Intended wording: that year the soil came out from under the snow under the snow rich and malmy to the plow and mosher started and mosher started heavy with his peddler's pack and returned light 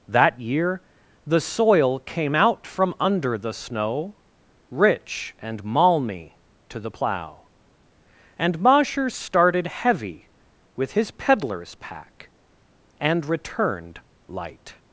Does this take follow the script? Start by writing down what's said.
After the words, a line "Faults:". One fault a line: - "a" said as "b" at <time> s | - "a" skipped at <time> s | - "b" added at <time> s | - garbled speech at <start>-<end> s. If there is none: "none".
that year the soil came out from under the snow rich and malmy to the plow and mosher started heavy with his peddler's pack and returned light
Faults:
- "under the snow" skipped at 4.2 s
- "and mosher started" skipped at 9.7 s